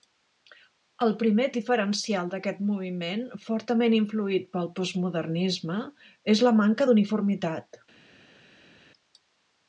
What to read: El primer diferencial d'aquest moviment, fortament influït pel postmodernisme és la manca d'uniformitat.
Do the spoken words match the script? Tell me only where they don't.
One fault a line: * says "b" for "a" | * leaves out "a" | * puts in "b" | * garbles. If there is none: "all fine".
all fine